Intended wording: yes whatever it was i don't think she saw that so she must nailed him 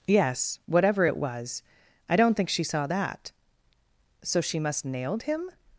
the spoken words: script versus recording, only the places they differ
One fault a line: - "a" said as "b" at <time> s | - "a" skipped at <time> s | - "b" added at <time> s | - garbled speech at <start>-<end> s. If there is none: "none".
none